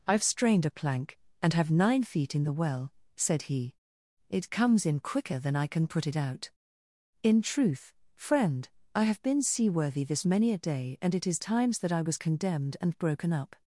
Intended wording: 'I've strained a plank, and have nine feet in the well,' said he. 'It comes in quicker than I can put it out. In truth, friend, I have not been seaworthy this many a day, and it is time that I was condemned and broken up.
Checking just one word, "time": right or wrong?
wrong